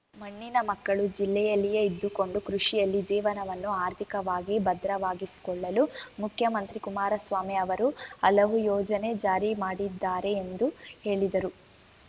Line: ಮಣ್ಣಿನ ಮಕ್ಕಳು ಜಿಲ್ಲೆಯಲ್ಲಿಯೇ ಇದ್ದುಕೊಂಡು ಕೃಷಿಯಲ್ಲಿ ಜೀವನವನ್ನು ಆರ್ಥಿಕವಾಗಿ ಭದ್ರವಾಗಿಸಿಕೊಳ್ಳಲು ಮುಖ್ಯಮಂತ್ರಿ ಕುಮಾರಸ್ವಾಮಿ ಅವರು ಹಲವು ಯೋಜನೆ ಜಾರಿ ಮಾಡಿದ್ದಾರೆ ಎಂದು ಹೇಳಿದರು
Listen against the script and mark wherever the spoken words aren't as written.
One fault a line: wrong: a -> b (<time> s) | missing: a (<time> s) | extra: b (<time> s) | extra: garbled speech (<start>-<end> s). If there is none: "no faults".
no faults